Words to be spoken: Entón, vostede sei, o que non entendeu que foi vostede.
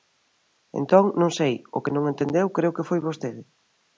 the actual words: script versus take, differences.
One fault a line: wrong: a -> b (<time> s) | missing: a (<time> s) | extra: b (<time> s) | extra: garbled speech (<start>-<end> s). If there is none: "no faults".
wrong: vostede -> non (1.2 s)
extra: creo (2.6 s)